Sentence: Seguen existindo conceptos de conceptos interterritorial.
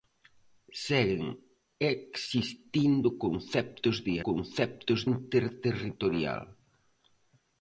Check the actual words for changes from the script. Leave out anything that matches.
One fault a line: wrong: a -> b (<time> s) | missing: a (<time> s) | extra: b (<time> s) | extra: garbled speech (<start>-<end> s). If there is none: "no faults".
no faults